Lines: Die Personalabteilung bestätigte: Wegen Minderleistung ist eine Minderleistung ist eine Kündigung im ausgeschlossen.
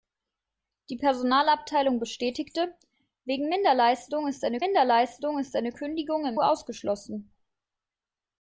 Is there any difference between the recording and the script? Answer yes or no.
no